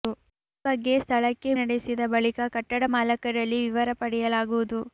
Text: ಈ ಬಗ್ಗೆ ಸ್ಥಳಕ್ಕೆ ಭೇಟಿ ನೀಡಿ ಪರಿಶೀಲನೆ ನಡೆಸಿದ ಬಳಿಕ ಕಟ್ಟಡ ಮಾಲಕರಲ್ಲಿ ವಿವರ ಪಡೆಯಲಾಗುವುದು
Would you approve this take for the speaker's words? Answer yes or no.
no